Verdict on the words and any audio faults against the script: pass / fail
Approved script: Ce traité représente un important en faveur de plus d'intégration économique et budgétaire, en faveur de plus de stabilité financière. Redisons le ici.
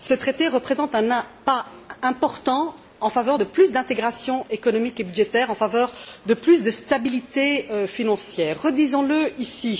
fail